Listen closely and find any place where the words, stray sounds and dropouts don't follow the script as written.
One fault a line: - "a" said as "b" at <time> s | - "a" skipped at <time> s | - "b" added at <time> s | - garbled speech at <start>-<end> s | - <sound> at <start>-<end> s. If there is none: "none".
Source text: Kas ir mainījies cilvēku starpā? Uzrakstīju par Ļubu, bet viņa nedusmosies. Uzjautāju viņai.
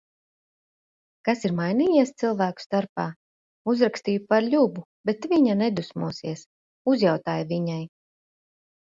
none